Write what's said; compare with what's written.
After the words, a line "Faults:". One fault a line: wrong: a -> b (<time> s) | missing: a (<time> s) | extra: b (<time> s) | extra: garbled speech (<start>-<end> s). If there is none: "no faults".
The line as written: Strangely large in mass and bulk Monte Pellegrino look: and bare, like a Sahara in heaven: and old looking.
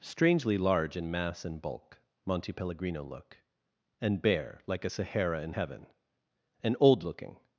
Strangely large in mass and bulk Monte Pellegrino look: and bare, like a Sahara in heaven: and old looking.
Faults:
no faults